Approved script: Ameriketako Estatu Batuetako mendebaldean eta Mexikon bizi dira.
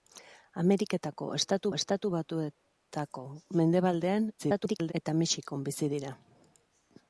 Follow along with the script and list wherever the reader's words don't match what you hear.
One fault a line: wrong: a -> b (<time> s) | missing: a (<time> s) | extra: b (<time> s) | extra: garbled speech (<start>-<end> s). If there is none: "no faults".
extra: Estatu (1.8 s)
extra: garbled speech (4.4-4.9 s)